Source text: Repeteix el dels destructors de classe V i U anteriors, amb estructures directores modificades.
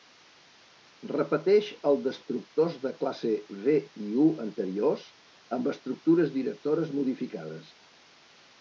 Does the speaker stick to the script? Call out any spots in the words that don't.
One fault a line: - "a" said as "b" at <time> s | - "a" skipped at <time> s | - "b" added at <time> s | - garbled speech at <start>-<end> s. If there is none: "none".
- "dels" skipped at 2.0 s